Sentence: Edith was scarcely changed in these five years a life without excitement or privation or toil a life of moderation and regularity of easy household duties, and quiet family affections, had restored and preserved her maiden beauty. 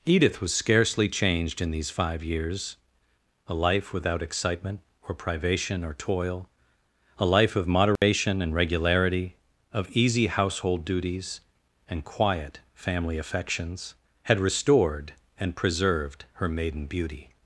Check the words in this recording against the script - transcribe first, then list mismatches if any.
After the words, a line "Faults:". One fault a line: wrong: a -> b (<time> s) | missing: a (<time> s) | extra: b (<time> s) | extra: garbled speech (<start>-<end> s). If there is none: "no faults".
Edith was scarcely changed in these five years a life without excitement or privation or toil a life of moderation and regularity of easy household duties, and quiet family affections, had restored and preserved her maiden beauty.
Faults:
no faults